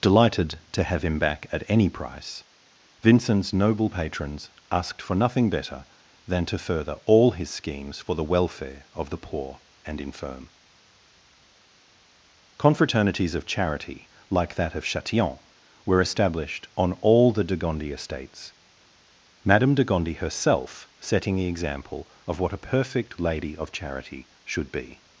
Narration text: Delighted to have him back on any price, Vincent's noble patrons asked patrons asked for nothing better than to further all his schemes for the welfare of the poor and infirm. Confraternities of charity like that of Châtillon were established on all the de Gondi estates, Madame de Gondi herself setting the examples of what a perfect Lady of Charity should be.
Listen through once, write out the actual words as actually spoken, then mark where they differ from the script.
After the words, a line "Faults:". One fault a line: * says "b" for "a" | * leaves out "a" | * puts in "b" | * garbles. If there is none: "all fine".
Delighted to have him back at any price, Vincent's noble patrons asked for nothing better than to further all his schemes for the welfare of the poor and infirm. Confraternities of charity like that of Châtillon were established on all the de Gondi estates, Madame de Gondi herself setting the example of what a perfect Lady of Charity should be.
Faults:
* says "at" for "on"
* leaves out "patrons asked"
* says "example" for "examples"